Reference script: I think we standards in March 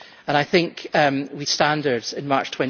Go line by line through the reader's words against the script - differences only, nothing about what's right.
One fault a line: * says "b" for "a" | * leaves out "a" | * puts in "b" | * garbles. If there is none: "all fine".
all fine